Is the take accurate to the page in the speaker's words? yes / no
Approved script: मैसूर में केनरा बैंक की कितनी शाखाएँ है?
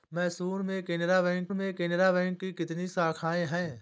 no